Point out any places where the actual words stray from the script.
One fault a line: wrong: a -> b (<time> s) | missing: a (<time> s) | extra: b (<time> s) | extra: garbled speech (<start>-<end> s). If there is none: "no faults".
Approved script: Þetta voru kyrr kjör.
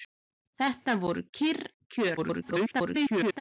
extra: garbled speech (2.2-3.4 s)